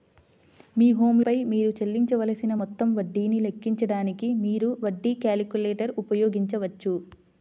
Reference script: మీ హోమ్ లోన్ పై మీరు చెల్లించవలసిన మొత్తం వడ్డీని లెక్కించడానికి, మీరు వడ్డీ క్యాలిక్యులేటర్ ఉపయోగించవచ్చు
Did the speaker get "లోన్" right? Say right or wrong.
wrong